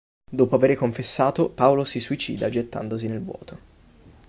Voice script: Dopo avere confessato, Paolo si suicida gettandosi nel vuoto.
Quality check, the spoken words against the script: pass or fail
pass